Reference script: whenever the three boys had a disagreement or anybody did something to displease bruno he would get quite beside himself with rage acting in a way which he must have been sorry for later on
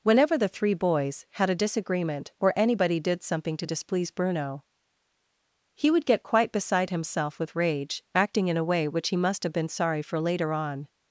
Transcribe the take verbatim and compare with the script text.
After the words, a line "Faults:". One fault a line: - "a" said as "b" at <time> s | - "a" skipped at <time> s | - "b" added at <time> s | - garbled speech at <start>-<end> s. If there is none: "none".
whenever the three boys had a disagreement or anybody did something to displease bruno he would get quite beside himself with rage acting in a way which he must have been sorry for later on
Faults:
none